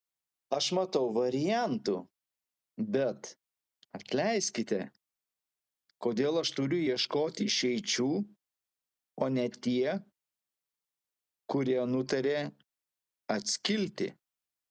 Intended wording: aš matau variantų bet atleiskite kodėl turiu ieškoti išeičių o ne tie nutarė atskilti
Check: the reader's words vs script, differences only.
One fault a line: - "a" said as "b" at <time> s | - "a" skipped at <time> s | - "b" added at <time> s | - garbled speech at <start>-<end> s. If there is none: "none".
- "aš" added at 6.4 s
- "kurie" added at 11.5 s